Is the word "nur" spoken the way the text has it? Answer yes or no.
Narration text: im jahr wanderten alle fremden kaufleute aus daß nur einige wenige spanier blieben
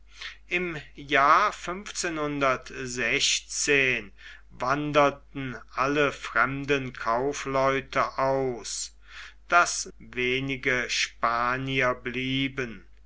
no